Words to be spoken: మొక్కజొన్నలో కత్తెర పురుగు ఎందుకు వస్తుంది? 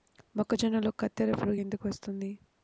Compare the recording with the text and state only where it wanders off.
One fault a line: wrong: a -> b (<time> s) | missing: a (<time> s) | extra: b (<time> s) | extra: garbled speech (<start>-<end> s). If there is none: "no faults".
no faults